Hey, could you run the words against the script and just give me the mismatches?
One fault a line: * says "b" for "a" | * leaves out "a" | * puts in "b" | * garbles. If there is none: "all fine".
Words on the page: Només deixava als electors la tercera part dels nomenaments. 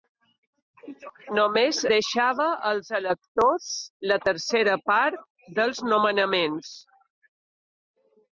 all fine